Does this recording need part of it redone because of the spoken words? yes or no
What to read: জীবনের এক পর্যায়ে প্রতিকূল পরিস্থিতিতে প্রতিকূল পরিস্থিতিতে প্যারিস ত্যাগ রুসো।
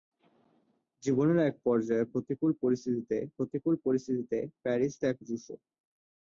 no